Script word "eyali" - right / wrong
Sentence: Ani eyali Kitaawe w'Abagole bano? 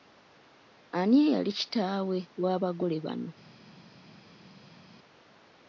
right